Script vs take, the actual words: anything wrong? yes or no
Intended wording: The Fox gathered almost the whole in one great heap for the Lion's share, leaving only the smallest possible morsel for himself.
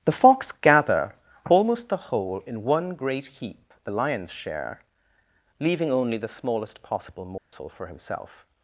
yes